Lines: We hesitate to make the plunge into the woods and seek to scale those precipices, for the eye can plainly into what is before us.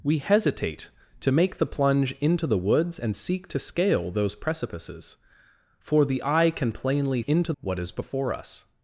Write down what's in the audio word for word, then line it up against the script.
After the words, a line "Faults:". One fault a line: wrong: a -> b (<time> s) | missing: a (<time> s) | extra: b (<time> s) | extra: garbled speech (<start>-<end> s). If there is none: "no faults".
We hesitate to make the plunge into the woods and seek to scale those precipices, for the eye can plainly into what is before us.
Faults:
no faults